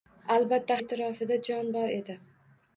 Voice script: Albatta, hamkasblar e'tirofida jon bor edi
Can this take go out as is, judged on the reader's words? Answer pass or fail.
fail